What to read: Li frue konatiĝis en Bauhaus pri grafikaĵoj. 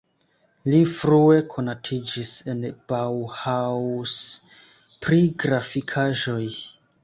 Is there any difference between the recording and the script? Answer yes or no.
no